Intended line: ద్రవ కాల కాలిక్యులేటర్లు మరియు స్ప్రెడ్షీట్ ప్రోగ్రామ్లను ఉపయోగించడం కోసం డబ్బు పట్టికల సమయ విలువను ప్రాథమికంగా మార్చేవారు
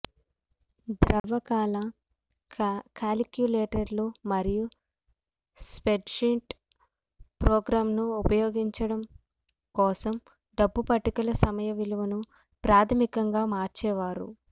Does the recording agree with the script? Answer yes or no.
yes